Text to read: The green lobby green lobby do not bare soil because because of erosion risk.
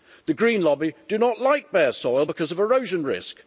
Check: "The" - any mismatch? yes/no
no